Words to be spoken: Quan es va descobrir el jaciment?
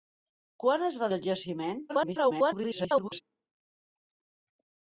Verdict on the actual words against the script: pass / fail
fail